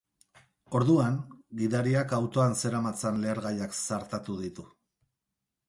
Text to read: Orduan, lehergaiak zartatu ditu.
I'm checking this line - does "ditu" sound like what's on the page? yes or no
yes